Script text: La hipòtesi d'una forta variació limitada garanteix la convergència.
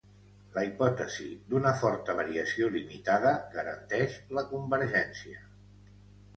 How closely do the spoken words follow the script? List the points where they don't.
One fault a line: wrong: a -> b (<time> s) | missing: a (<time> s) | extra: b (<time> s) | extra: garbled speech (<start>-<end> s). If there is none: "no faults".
no faults